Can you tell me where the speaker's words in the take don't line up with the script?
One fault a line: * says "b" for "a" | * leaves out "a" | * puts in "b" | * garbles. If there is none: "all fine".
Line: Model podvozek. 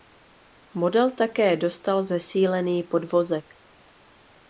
* puts in "také dostal zesílený"